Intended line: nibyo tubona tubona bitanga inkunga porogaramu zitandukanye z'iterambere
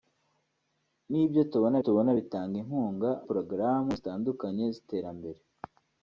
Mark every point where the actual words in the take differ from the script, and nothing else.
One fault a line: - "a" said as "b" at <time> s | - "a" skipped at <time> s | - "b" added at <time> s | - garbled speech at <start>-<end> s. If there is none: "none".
none